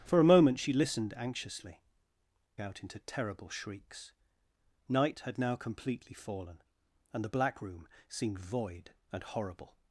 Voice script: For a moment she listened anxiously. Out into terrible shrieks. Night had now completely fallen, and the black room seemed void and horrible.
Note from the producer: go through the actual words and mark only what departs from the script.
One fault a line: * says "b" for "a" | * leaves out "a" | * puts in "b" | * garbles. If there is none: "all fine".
all fine